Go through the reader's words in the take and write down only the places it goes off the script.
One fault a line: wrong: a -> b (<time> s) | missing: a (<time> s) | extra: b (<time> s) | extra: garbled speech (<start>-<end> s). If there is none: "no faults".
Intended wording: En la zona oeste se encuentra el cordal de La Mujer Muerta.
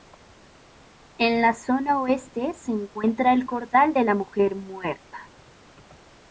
no faults